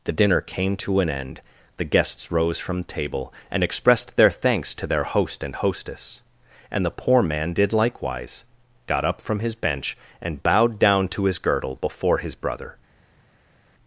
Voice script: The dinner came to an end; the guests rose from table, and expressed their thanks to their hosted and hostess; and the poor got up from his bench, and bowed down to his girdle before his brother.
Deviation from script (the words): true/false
true